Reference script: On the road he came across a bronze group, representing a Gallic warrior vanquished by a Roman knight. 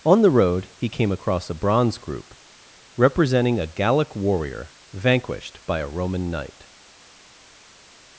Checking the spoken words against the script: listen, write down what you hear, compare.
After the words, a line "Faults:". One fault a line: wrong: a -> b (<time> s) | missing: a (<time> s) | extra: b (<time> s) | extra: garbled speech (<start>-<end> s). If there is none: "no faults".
On the road he came across a bronze group, representing a Gallic warrior vanquished by a Roman knight.
Faults:
no faults